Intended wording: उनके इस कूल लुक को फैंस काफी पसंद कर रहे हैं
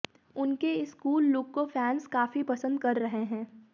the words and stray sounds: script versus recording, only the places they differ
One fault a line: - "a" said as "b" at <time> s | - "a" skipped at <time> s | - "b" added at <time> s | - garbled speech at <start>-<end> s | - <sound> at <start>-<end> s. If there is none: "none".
none